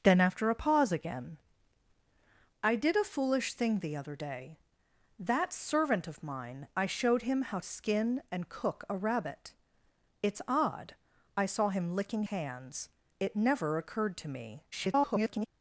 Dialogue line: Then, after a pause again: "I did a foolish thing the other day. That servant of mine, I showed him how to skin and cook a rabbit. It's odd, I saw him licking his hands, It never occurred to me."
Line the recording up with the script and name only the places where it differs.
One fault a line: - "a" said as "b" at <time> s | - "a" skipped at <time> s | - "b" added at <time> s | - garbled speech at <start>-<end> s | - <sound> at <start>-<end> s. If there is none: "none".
- "to" skipped at 7.6 s
- "his" skipped at 12.2 s
- garbled speech at 14.7-15.5 s